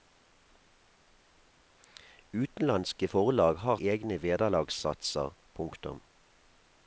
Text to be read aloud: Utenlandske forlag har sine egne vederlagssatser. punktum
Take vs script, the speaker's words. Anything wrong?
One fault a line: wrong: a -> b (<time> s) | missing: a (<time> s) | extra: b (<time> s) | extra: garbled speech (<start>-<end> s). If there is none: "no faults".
missing: sine (3.8 s)